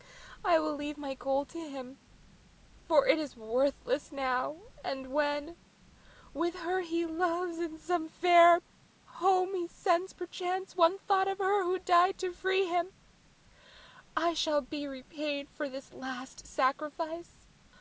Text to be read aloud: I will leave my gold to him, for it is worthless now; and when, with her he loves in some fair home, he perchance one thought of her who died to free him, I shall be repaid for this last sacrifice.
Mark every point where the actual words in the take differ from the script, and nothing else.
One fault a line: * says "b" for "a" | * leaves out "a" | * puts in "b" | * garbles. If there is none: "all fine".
* puts in "sends"